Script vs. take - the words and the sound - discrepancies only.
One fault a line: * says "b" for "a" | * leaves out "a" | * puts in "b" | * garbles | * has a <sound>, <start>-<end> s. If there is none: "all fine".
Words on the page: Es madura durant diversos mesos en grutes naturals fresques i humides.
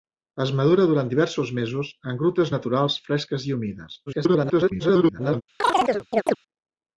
* garbles
* has a chirp, 5.6-6.4 s